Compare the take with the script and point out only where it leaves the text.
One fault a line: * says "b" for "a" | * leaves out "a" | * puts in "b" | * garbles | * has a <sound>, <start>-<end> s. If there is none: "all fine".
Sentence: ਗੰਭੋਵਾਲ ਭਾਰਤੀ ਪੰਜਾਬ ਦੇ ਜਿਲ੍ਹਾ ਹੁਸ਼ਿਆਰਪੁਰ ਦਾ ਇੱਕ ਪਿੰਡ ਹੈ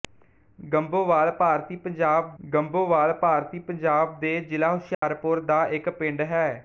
* puts in "ਗੰਭੋਵਾਲ ਭਾਰਤੀ ਪੰਜਾਬ"
* has a dropout, 4.9-5.0 s